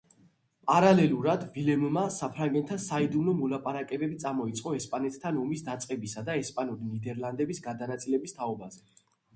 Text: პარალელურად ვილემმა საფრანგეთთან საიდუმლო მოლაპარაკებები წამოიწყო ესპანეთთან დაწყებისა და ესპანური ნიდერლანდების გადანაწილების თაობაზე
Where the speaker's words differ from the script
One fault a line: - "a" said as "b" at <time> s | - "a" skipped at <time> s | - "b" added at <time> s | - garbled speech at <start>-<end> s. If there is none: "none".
- "ომის" added at 5.5 s